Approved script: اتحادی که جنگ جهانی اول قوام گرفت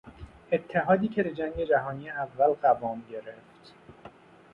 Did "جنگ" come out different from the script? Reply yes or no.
no